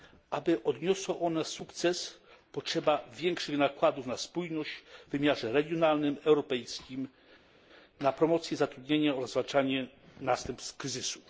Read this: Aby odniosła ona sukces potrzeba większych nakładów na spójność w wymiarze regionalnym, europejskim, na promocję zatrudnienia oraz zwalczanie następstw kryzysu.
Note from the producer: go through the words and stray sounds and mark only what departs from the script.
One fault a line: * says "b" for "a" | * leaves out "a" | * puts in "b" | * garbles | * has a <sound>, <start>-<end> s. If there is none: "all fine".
all fine